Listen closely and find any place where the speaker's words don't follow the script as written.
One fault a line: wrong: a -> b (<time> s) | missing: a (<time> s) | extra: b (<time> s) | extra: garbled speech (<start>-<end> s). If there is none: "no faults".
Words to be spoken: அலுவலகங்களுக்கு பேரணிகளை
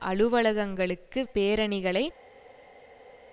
no faults